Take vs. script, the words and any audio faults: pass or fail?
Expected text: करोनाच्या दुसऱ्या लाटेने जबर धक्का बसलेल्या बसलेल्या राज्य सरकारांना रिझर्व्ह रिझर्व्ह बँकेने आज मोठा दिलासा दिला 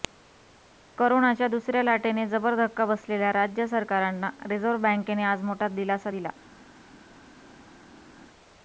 fail